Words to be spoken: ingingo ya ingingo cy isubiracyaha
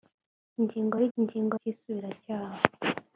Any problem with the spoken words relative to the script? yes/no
no